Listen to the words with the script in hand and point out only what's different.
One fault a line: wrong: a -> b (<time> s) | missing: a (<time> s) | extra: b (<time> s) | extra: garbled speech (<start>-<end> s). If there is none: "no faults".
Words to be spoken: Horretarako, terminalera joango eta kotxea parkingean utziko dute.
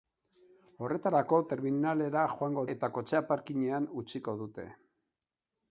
no faults